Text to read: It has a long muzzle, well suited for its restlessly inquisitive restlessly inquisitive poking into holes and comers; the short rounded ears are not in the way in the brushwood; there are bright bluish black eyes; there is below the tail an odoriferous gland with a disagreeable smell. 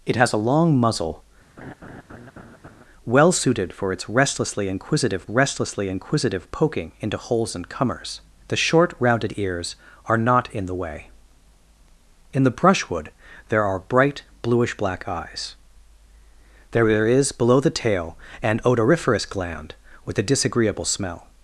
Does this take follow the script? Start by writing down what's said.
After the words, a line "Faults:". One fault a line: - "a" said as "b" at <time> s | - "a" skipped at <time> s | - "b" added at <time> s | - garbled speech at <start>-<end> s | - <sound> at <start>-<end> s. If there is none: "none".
It has a long muzzle, well suited for its restlessly inquisitive restlessly inquisitive poking into holes and comers; the short rounded ears are not in the way in the brushwood; there are bright bluish black eyes; there is below the tail an odoriferous gland with a disagreeable smell.
Faults:
- laugh at 1.6-2.8 s